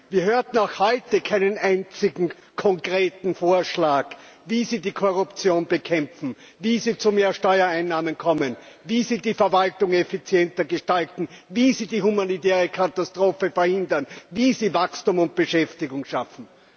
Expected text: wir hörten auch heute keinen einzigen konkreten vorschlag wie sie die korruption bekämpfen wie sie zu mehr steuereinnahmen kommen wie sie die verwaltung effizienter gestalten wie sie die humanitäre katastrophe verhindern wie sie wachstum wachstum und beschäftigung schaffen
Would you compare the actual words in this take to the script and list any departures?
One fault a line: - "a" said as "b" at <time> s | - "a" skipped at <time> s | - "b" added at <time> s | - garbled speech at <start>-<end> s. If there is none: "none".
- "wachstum" skipped at 15.2 s